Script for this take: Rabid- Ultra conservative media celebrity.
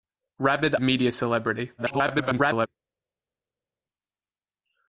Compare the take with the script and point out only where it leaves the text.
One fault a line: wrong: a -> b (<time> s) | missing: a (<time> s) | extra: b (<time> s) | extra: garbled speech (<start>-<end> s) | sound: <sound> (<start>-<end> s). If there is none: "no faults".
missing: Ultra conservative (0.7 s)
extra: garbled speech (1.8-2.7 s)